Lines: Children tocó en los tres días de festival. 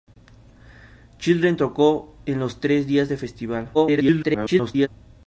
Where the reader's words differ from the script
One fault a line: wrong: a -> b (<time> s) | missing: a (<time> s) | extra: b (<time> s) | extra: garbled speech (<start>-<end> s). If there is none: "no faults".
extra: garbled speech (3.7-4.9 s)